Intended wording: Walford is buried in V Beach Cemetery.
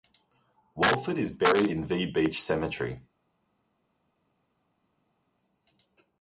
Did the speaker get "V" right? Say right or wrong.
right